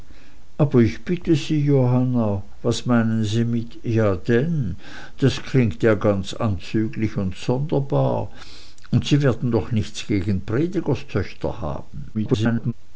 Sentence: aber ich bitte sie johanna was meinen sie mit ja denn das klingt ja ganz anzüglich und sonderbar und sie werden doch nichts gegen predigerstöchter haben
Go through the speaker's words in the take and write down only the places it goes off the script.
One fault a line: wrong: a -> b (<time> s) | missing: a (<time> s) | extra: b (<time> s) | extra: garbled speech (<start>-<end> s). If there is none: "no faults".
extra: garbled speech (12.1-12.7 s)